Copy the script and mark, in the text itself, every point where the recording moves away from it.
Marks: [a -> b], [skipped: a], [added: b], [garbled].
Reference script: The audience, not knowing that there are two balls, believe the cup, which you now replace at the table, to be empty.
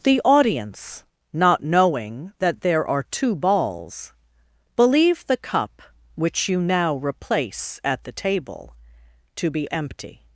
The audience, not knowing that there are two balls, believe the cup, which you now replace at the table, to be empty.